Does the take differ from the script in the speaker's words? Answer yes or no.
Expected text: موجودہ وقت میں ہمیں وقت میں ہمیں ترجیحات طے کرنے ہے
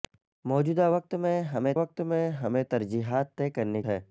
no